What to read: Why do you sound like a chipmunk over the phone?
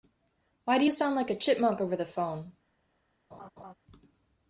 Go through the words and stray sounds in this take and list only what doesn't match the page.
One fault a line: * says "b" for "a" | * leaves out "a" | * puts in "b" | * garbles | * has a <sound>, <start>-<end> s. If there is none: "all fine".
* has a laugh, 3.3-3.7 s